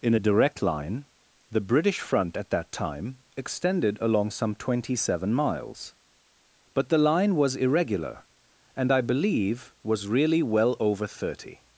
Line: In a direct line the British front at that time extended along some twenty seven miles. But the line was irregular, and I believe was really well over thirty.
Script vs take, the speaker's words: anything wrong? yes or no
no